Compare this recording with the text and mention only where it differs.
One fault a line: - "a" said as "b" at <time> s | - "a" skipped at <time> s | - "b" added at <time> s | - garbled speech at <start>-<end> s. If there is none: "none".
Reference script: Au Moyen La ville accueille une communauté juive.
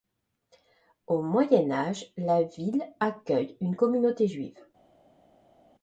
- "Âge" added at 1.7 s